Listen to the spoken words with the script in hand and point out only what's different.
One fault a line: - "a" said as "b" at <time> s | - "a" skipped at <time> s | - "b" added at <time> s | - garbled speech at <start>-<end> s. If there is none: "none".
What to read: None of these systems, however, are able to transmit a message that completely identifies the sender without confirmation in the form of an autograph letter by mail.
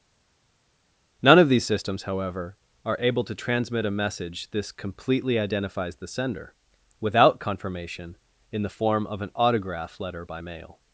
- "that" said as "this" at 4.5 s